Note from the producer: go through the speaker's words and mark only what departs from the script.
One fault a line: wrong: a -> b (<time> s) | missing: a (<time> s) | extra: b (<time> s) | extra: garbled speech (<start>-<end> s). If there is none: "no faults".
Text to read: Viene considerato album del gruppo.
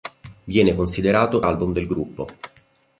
no faults